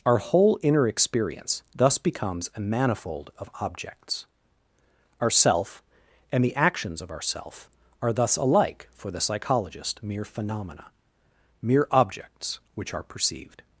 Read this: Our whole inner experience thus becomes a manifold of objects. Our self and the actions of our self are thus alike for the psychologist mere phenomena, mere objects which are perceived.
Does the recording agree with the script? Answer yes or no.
yes